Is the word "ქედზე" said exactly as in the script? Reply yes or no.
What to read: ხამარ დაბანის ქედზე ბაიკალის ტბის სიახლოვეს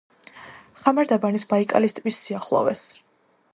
no